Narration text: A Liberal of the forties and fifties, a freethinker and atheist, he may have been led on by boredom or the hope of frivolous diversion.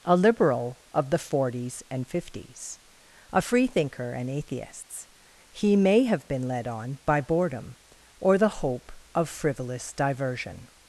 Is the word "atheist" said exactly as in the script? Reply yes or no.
no